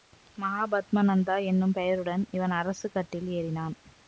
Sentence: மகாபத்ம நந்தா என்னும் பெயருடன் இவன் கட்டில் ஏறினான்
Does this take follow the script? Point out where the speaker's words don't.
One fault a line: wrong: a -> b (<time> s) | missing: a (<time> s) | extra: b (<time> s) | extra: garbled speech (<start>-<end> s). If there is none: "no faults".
extra: அரசு (2.6 s)